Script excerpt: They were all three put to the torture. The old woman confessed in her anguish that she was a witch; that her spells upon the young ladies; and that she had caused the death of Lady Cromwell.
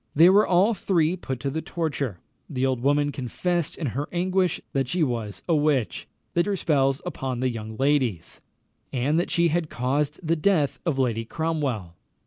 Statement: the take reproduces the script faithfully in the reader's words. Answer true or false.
true